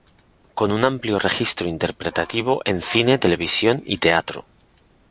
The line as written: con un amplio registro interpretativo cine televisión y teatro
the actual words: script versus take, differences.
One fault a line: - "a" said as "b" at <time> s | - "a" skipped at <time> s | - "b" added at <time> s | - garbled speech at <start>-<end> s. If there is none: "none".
- "en" added at 2.6 s